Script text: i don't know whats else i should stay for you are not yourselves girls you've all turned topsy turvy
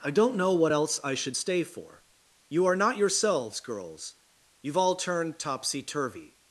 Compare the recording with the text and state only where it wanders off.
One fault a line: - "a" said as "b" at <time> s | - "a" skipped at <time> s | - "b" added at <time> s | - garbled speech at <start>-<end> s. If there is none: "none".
- "whats" said as "what" at 0.5 s